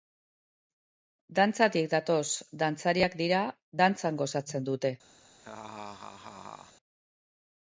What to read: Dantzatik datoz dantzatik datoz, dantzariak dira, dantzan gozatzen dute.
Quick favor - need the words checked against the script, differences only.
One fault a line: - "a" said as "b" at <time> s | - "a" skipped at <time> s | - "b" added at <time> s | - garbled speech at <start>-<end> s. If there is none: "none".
- "dantzatik datoz" skipped at 2.2 s